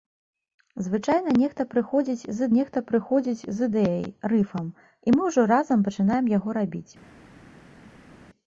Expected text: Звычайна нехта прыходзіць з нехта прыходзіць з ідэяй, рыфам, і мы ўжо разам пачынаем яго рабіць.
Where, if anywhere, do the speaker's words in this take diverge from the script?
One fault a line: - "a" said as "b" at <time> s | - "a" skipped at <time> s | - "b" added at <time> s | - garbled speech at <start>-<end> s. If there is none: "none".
none